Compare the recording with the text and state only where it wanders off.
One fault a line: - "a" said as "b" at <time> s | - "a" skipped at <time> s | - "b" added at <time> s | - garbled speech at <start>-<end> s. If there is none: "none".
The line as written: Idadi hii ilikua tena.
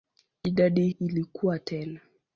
- "hii" skipped at 0.9 s